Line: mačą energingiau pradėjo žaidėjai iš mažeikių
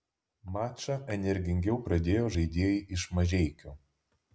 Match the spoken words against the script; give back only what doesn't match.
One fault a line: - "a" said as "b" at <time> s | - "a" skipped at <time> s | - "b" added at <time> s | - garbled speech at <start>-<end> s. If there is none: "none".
none